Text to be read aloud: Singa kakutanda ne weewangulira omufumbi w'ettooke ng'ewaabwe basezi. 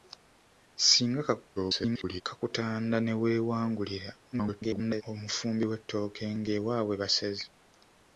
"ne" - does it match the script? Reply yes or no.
yes